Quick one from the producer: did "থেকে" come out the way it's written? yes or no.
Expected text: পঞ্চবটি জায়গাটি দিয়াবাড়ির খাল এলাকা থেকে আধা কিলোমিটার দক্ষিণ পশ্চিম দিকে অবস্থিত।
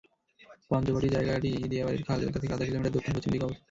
yes